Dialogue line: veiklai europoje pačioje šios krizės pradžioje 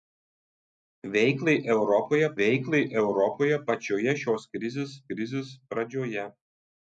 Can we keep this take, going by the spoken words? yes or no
no